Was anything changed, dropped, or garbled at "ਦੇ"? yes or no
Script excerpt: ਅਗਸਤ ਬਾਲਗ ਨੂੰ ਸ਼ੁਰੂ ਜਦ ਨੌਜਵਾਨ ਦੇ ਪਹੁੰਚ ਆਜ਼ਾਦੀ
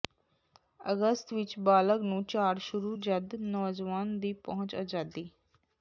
yes